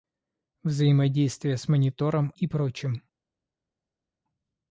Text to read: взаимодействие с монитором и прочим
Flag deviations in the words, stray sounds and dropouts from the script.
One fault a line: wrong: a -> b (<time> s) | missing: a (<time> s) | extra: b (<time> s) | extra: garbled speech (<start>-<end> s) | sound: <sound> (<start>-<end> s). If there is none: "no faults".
no faults